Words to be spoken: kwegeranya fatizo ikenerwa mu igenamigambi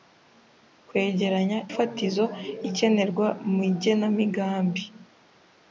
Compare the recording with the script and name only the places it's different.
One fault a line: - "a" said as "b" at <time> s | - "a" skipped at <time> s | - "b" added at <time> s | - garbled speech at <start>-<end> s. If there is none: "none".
none